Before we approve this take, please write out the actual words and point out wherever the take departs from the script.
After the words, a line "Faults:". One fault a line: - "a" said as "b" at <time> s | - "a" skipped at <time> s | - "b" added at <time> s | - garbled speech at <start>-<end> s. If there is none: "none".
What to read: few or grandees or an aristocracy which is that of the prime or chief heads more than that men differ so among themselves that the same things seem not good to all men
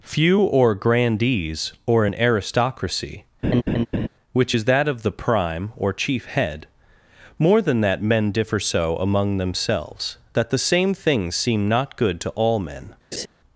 few or grandees or an aristocracy which is that of the prime or chief head more than that men differ so among themselves that the same things seem not good to all men
Faults:
- "heads" said as "head" at 6.3 s